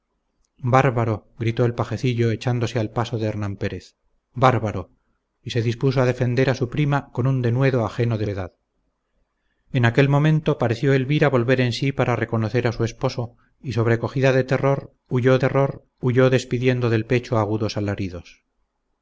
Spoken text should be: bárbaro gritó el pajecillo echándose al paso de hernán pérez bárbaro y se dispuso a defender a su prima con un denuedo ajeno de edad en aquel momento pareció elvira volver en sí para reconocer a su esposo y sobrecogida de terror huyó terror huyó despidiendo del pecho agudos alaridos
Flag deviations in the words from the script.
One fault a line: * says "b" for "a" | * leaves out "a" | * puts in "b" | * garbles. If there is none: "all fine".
all fine